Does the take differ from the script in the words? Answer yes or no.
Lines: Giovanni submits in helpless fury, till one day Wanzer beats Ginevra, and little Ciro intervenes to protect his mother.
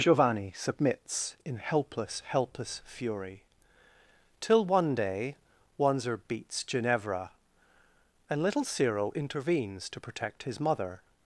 yes